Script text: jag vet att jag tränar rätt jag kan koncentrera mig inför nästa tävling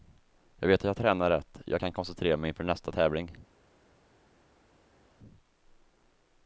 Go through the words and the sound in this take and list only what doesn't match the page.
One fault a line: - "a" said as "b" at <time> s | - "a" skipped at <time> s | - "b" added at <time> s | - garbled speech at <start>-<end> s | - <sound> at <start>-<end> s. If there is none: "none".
none